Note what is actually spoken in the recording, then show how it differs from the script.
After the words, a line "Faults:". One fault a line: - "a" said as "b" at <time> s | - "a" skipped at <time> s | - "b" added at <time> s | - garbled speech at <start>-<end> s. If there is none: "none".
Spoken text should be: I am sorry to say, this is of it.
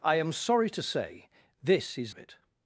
I am sorry to say, this is of it.
Faults:
none